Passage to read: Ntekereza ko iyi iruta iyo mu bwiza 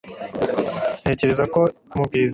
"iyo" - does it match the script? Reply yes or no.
no